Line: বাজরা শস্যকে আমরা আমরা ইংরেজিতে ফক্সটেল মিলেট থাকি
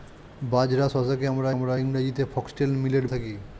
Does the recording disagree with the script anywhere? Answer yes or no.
no